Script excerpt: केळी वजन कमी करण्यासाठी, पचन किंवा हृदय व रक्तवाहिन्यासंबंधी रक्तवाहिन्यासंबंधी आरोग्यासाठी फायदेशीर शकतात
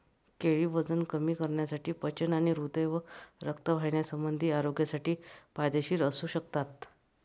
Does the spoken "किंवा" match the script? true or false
false